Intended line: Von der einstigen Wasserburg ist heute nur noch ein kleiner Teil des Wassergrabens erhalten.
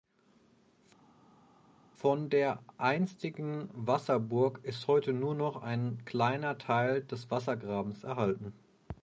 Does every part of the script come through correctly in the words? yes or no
yes